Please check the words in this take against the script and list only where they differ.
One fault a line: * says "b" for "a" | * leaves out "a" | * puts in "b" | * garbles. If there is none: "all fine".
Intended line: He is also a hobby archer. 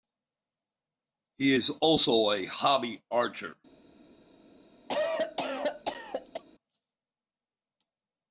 all fine